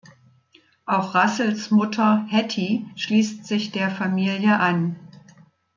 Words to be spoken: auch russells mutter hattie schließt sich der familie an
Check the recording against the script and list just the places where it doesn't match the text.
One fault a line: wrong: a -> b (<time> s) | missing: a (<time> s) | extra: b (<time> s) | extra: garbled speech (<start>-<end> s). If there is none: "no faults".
no faults